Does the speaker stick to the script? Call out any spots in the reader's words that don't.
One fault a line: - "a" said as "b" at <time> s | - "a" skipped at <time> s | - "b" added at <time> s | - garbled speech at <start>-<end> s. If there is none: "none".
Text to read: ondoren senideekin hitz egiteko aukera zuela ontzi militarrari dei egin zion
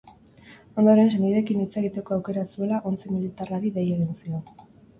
none